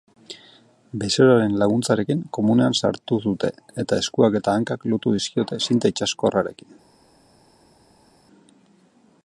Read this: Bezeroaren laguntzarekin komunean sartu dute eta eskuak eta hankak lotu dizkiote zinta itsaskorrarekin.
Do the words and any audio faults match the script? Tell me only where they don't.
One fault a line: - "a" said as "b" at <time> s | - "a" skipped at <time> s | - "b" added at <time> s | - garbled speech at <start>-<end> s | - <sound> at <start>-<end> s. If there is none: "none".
none